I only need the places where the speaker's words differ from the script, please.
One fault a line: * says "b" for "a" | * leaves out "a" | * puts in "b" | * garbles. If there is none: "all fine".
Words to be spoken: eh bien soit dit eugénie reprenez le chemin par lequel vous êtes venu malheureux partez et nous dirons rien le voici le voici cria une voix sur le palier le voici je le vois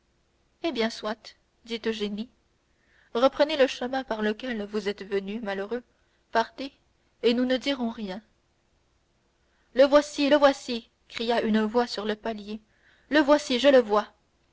* puts in "ne"